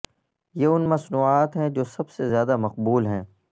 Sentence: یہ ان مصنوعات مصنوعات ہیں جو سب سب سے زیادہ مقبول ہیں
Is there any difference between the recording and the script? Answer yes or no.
yes